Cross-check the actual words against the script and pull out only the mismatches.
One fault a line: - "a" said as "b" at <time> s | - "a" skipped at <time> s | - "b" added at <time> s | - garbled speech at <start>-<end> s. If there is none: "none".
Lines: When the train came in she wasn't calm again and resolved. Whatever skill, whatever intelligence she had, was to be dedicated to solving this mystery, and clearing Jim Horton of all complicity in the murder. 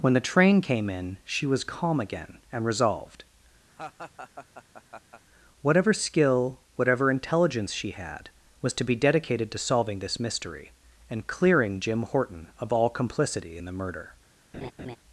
- "wasn't" said as "was" at 1.4 s